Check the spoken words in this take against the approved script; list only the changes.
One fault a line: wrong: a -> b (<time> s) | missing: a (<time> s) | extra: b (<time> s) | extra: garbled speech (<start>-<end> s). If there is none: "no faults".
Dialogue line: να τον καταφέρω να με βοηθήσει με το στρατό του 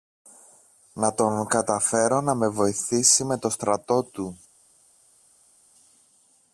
no faults